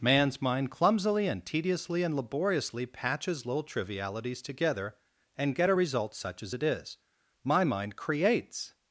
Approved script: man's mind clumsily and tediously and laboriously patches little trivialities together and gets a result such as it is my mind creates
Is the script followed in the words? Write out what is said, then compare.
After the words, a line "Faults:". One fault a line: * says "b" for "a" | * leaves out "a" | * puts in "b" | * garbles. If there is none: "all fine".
man's mind clumsily and tediously and laboriously patches little trivialities together and get a result such as it is my mind creates
Faults:
* says "get" for "gets"